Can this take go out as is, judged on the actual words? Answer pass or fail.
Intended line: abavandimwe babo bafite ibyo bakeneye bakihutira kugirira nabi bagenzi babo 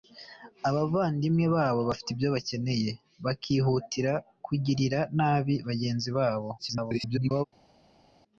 fail